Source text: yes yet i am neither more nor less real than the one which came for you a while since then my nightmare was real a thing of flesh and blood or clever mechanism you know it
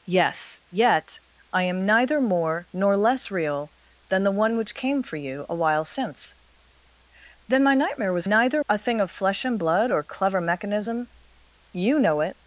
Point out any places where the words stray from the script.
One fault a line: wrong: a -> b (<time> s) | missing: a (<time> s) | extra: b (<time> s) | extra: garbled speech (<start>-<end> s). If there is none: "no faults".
wrong: real -> neither (8.3 s)